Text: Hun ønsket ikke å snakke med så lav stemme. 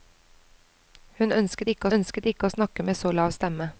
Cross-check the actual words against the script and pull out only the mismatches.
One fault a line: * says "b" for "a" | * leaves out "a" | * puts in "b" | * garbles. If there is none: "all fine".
* puts in "ønsket ikke"